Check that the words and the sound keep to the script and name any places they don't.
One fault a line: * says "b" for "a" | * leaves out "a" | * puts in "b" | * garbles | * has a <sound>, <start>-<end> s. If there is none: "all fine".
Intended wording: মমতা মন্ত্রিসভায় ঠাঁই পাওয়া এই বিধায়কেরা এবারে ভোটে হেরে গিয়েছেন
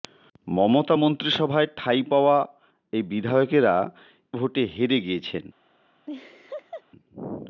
* leaves out "এবারে"
* has a laugh, 6.1-6.8 s